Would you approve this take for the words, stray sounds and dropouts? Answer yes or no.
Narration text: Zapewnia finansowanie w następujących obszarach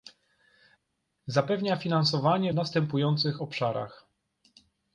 yes